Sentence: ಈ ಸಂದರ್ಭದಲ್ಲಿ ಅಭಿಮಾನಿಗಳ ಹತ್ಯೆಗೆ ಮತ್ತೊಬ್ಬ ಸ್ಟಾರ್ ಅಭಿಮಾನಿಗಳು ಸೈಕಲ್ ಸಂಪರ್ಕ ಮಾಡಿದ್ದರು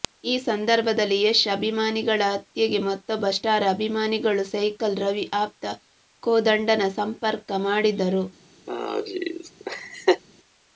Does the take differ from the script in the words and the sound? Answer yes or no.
yes